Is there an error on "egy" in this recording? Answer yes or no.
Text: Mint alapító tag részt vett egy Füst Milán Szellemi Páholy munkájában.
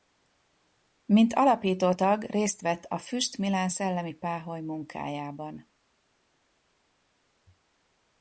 yes